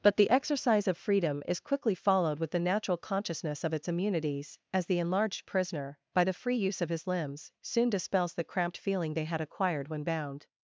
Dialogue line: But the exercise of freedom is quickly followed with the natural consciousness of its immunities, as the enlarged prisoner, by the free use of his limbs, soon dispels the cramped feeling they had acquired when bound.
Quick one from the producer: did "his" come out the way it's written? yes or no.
yes